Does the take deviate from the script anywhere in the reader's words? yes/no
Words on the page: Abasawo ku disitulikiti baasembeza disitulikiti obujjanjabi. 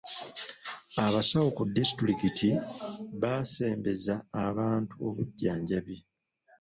yes